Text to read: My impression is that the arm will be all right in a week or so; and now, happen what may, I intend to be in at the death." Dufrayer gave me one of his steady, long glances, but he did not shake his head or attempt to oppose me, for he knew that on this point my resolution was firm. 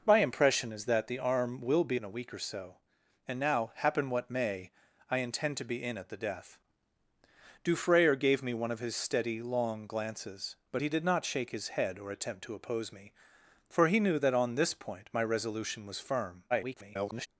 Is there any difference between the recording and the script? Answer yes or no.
yes